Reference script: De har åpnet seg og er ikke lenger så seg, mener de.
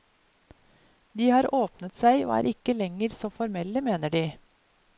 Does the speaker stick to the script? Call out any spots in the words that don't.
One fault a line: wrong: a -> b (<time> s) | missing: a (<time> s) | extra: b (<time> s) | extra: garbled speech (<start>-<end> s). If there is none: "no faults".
wrong: seg -> formelle (3.4 s)